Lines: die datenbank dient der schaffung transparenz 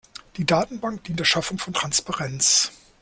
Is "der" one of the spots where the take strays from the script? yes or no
no